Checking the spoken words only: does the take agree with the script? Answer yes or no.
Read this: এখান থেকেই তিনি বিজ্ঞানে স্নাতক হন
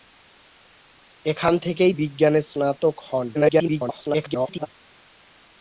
no